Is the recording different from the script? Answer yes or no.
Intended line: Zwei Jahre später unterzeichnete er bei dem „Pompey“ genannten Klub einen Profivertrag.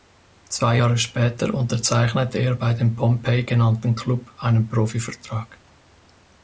no